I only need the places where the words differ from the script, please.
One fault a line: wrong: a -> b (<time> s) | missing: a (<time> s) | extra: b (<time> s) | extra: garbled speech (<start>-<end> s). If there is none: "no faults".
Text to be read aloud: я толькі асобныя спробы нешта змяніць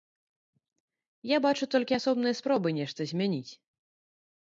extra: бачу (1.5 s)